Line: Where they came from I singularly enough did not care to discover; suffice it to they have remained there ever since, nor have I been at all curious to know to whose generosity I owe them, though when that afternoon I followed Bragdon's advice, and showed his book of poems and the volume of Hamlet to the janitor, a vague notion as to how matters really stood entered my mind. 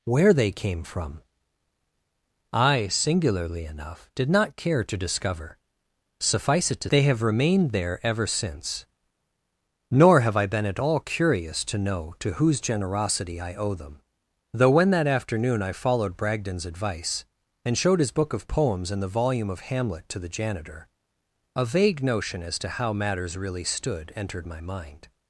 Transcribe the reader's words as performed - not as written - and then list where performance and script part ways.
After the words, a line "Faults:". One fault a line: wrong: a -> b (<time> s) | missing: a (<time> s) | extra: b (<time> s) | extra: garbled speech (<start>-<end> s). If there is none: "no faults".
Where they came from I singularly enough did not care to discover; suffice it to they have remained there ever since, nor have I been at all curious to know to whose generosity I owe them, though when that afternoon I followed Bragdon's advice, and showed his book of poems and the volume of Hamlet to the janitor, a vague notion as to how matters really stood entered my mind.
Faults:
no faults